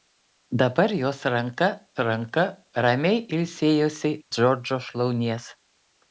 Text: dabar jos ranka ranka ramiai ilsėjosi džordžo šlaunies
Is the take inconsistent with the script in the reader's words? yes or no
no